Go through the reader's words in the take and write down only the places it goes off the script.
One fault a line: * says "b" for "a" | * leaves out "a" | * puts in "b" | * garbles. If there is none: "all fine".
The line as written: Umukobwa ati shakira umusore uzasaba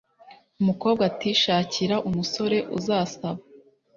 all fine